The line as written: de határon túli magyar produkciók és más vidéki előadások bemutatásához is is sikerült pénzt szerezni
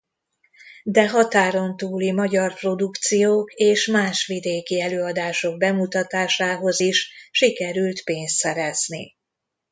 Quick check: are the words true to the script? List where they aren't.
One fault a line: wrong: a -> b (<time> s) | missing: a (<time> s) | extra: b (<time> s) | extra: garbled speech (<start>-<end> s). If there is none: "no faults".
missing: is (7.1 s)